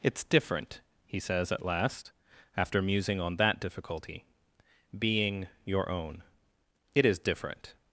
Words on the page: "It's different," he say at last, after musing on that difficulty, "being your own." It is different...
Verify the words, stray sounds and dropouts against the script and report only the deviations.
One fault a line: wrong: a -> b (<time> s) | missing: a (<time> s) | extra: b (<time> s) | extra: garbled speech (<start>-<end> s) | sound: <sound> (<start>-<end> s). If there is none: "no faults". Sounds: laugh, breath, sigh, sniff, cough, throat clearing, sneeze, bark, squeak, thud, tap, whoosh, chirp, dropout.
wrong: say -> says (1.2 s)